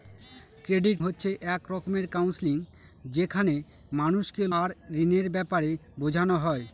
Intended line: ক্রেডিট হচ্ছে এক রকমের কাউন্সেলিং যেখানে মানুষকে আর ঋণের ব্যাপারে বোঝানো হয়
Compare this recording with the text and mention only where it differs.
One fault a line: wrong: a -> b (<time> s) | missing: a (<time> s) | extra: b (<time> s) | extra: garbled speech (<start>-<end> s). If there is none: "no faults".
no faults